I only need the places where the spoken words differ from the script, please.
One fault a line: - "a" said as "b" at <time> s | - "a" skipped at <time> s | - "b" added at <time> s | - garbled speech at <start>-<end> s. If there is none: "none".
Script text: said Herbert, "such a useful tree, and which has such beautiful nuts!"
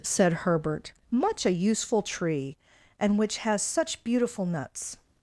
- "such" said as "much" at 1.1 s